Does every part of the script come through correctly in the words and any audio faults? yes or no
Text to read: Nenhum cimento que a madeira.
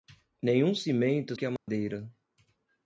no